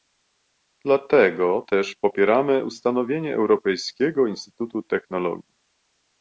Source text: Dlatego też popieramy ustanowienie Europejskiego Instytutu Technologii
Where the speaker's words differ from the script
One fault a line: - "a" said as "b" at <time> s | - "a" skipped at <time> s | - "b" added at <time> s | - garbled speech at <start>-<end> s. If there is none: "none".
none